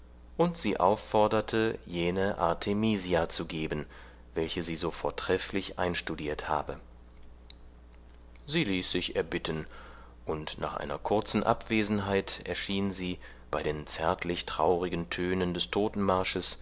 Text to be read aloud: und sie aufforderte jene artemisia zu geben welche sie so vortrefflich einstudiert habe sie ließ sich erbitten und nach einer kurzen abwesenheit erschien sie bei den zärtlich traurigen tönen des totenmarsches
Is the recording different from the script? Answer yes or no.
no